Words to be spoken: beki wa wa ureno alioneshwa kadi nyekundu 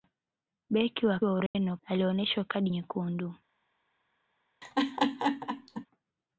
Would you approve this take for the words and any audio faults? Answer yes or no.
no